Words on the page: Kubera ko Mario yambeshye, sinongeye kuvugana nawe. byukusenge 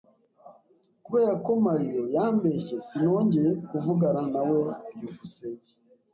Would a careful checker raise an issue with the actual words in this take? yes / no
no